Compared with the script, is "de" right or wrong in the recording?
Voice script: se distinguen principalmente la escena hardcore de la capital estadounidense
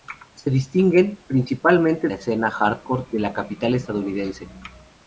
right